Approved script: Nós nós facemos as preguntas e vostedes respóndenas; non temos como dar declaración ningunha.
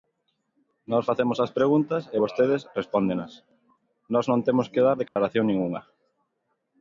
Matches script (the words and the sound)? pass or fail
fail